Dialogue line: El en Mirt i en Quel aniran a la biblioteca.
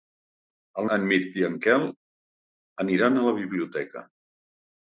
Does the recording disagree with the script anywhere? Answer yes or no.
no